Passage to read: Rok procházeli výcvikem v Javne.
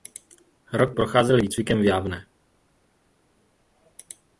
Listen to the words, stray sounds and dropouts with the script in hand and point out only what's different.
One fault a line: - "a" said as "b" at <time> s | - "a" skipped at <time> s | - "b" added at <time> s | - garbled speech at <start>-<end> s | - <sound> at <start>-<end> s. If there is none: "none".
none